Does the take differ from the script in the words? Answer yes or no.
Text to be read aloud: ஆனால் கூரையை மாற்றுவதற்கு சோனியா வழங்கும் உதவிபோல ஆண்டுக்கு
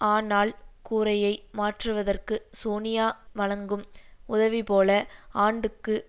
no